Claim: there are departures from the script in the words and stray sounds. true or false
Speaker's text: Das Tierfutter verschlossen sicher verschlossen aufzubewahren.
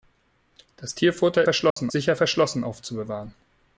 true